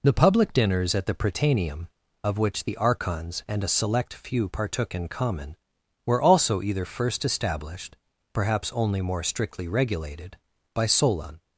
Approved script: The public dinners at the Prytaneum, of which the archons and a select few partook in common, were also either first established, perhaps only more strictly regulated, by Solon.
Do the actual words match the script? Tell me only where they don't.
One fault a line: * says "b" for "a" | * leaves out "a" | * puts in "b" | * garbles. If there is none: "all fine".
all fine